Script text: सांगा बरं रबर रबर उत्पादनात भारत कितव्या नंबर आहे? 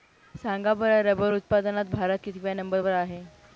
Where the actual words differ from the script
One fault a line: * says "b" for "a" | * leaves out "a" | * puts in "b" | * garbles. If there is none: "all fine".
* leaves out "रबर"
* puts in "वर"